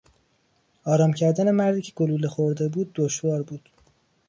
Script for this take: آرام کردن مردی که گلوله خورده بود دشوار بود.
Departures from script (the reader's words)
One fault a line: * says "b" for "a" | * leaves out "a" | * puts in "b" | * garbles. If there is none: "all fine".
all fine